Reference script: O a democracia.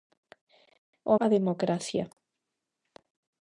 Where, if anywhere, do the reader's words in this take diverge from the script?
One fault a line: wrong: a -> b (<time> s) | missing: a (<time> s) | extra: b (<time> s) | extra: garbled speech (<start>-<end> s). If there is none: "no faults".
no faults